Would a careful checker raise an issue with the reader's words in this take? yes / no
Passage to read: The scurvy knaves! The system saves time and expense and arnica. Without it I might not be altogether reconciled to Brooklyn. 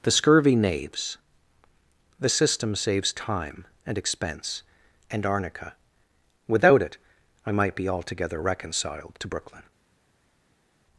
yes